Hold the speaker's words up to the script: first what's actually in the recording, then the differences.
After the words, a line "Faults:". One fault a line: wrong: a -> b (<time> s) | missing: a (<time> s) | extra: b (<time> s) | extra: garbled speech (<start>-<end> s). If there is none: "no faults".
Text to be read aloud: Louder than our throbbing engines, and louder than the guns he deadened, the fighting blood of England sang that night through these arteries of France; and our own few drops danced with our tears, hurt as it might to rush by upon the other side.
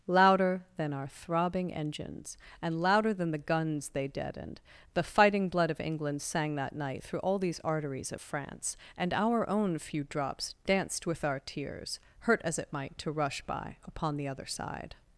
Louder than our throbbing engines, and louder than the guns they deadened, the fighting blood of England sang that night through all these arteries of France; and our own few drops danced with our tears, hurt as it might to rush by upon the other side.
Faults:
wrong: he -> they (3.9 s)
extra: all (7.2 s)